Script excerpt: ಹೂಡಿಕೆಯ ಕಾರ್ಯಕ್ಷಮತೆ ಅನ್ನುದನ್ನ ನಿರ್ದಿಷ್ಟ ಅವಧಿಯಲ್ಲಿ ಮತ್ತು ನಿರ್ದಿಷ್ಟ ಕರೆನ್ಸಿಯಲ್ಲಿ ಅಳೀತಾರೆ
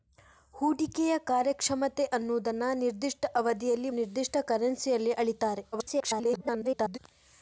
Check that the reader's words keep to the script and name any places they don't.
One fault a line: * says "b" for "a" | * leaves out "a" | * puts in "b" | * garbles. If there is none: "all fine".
* leaves out "ಮತ್ತು"
* garbles